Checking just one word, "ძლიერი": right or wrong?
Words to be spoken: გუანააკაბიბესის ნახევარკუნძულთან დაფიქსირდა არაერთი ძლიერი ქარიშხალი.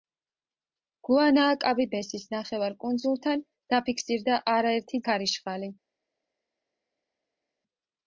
wrong